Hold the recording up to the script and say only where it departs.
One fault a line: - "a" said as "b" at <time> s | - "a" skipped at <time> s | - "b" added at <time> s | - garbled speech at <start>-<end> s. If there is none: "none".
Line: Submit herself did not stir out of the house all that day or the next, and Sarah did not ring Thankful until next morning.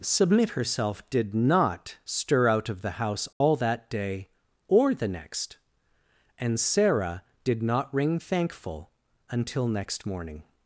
none